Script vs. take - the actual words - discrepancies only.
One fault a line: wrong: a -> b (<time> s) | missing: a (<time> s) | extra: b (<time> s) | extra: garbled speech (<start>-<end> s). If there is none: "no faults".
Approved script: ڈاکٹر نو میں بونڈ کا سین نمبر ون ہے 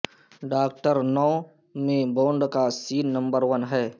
no faults